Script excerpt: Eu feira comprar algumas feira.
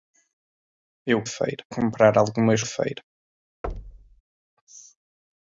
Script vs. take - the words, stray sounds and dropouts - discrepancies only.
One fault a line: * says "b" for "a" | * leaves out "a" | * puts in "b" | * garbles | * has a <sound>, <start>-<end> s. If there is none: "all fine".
* has a thud, 3.6-4.2 s